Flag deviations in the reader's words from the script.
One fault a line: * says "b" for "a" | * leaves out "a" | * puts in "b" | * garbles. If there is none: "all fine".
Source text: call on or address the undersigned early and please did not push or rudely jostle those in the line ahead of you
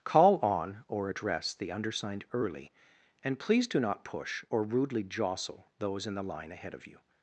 * says "do" for "did"